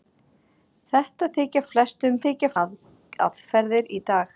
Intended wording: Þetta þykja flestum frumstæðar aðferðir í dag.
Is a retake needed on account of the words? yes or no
yes